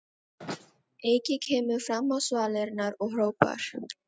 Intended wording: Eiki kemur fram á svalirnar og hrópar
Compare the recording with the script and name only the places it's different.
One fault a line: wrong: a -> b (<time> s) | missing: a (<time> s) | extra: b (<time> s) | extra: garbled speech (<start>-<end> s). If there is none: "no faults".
no faults